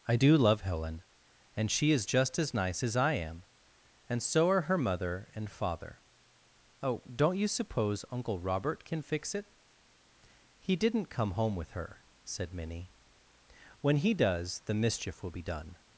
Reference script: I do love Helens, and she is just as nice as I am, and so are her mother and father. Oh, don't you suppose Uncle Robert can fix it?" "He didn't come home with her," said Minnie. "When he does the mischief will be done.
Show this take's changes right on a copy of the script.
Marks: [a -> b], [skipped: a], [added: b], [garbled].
I do love [Helens, -> Helen] and she is just as nice as I am, and so are her mother and father. Oh, don't you suppose Uncle Robert can fix it?" "He didn't come home with her," said Minnie. "When he does the mischief will be done.